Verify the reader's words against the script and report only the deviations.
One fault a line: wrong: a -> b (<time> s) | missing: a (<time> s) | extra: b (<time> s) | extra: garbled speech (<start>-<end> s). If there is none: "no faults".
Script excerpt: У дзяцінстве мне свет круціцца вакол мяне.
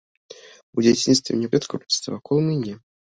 no faults